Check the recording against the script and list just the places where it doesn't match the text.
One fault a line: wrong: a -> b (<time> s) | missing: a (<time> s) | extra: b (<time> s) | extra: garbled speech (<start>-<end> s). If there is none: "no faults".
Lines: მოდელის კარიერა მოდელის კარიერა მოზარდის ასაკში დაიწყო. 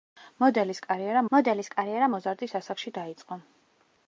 no faults